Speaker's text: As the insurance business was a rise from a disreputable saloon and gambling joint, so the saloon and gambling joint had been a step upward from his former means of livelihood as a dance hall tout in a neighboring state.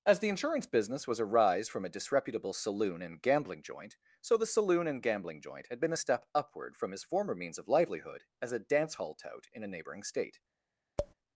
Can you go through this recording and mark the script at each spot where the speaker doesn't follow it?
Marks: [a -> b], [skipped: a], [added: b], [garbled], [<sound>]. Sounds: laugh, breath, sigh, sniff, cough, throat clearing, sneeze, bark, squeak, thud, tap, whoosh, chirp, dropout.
As the insurance business was a rise from a disreputable saloon and gambling joint, so the saloon and gambling joint had been a step upward from his former means of livelihood as a dance hall tout in a neighboring state. [tap]